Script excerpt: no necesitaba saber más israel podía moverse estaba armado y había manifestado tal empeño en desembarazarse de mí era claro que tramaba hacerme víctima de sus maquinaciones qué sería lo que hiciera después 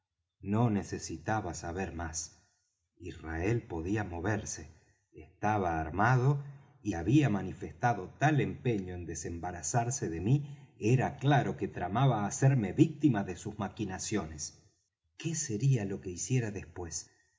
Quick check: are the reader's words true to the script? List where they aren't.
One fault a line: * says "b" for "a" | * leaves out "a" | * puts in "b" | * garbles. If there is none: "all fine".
all fine